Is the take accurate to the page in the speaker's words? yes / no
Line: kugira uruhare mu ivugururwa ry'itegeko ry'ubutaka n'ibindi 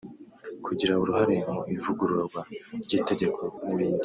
no